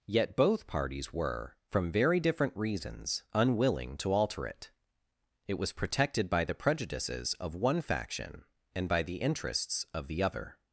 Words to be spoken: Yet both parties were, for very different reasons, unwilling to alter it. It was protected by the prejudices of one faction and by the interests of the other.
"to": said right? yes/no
yes